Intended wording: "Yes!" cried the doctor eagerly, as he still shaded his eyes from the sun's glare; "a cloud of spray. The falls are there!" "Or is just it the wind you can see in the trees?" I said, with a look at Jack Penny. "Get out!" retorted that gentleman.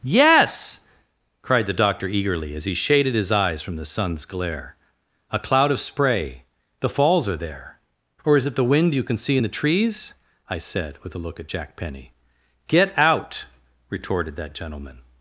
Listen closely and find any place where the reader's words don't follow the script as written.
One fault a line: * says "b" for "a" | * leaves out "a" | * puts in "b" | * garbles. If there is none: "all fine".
* leaves out "still"
* leaves out "just"